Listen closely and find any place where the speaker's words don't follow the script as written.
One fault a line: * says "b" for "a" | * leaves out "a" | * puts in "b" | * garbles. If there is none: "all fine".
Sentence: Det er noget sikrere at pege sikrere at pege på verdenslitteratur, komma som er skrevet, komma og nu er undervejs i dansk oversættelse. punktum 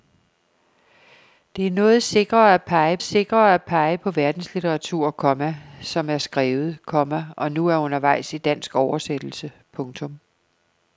all fine